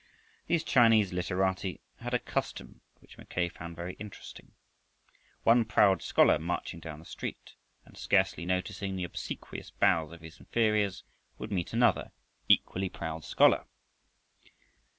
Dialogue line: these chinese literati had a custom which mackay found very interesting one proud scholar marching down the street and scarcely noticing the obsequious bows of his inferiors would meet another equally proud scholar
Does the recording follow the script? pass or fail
pass